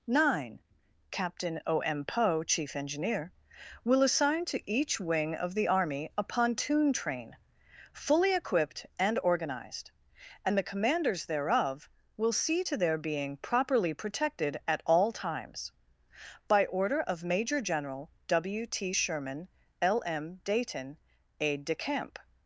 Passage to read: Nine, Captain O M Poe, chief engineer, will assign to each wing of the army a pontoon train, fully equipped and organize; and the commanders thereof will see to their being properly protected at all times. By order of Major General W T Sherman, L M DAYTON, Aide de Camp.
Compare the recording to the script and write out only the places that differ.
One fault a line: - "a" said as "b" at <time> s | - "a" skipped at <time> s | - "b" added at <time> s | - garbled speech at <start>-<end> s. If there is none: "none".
- "organize" said as "organized" at 9.2 s